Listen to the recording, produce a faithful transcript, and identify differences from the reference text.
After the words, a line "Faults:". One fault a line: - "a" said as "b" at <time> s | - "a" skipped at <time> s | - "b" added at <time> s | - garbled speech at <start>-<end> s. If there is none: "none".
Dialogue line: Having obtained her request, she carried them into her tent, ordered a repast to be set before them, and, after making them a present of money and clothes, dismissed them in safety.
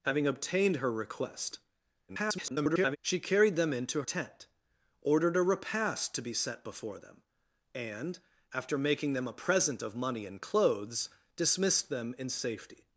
Having obtained her request, [garbled] she carried them into tent, ordered a repast to be set before them, and, after making them a present of money and clothes, dismissed them in safety.
Faults:
- garbled speech at 2.1-3.0 s
- "her" skipped at 4.0 s